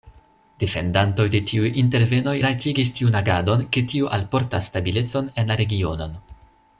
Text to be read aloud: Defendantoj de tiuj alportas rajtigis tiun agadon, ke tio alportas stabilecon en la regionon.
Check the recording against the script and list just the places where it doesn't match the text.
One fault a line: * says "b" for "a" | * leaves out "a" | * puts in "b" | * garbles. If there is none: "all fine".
* says "intervenoj" for "alportas"